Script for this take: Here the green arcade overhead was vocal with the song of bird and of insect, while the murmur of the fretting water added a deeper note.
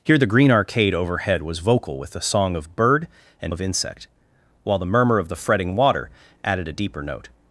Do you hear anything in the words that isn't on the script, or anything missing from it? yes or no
no